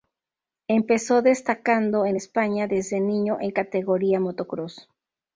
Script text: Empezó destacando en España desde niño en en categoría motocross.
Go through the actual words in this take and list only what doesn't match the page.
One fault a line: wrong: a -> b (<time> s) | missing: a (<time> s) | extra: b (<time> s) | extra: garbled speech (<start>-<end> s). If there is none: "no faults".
missing: en (3.5 s)